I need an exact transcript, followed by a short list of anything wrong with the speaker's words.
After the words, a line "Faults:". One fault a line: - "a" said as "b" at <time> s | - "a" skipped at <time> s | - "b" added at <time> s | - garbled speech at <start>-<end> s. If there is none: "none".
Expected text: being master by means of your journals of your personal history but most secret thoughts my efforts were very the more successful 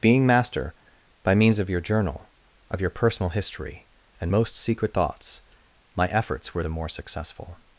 being master by means of your journal of your personal history and most secret thoughts my efforts were the more successful
Faults:
- "journals" said as "journal" at 1.8 s
- "but" said as "and" at 4.2 s
- "very" skipped at 6.6 s